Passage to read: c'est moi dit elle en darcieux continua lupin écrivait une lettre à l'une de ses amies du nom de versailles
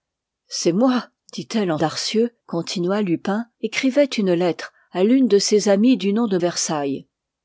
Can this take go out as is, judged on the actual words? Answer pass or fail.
pass